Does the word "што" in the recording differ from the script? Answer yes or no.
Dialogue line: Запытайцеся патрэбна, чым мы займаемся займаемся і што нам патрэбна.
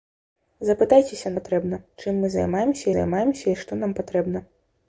no